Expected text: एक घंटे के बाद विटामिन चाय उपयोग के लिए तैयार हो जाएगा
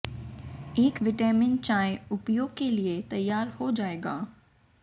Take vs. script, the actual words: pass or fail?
fail